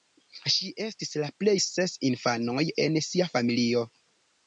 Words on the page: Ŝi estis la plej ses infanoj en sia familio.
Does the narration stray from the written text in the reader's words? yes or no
no